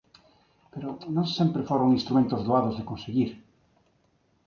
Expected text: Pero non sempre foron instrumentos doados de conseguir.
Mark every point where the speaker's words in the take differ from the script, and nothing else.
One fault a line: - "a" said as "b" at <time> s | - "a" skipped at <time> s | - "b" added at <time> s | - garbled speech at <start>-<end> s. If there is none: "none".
none